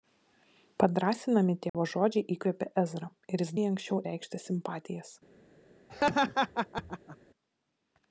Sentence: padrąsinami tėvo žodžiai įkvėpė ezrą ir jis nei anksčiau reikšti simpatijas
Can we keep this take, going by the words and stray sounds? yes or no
no